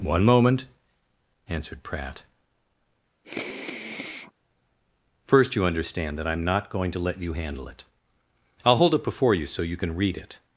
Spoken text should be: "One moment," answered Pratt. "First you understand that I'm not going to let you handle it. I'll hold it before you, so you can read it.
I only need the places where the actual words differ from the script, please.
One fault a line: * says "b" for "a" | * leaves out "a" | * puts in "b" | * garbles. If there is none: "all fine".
all fine